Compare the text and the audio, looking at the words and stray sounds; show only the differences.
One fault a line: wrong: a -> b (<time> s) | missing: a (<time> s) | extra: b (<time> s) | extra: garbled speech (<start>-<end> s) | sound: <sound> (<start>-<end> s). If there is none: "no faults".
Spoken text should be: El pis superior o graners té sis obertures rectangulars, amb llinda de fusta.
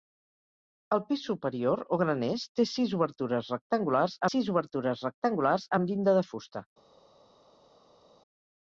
extra: sis obertures rectangulars (4.3 s)